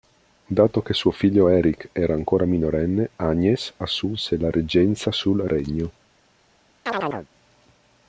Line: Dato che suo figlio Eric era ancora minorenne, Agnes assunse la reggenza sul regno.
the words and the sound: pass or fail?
fail